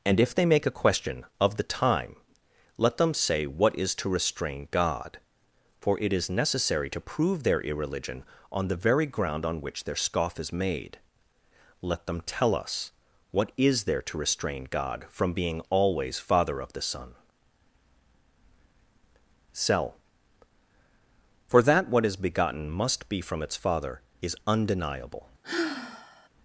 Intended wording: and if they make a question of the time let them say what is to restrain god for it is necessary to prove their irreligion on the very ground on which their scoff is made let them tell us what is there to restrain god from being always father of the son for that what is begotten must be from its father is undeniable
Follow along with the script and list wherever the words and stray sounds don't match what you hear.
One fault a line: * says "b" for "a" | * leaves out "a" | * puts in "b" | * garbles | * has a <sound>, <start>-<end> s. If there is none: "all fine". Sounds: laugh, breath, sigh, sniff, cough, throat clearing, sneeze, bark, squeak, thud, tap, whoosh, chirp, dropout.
* puts in "cell"
* has a sigh, 25.4-26.3 s